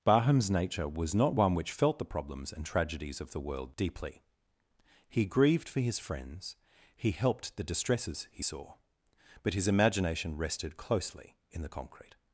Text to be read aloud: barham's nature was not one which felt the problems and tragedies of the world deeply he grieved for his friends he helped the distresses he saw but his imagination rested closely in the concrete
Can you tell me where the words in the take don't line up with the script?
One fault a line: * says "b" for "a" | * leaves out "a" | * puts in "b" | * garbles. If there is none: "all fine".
all fine